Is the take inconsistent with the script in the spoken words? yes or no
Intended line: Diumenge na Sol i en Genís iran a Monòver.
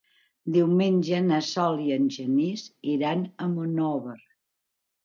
no